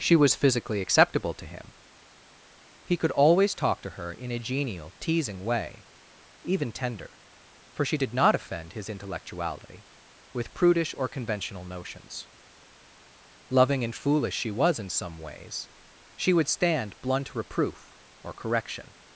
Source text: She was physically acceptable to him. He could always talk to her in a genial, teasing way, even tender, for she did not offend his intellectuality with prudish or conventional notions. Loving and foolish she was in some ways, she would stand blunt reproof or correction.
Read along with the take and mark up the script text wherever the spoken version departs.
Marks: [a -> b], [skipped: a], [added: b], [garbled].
She was physically acceptable to him. He could always talk to her in a genial, teasing way, even tender, for she did not offend his intellectuality with prudish or conventional notions. Loving and foolish she was in some ways, she would stand blunt reproof or correction.